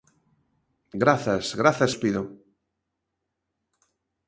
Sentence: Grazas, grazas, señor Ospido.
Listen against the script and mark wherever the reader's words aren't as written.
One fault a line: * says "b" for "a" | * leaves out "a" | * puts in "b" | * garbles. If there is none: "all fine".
* leaves out "señor"